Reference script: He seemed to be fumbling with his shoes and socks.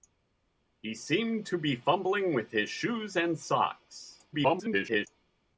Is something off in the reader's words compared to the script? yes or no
yes